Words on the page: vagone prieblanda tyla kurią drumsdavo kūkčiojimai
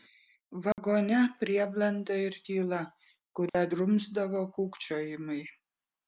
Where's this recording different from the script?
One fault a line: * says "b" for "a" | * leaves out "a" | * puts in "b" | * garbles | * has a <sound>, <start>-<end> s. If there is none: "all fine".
* has a dropout, 0.7-0.8 s
* puts in "ir"
* has a dropout, 3.5-3.5 s